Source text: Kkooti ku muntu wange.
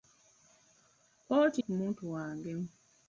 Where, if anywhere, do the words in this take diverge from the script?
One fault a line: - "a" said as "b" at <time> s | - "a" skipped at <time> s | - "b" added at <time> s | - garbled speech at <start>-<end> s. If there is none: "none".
none